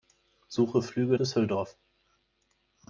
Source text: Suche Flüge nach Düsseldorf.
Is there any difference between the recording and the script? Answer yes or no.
yes